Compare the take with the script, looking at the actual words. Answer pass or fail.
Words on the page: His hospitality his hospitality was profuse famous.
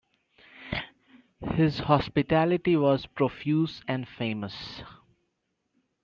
fail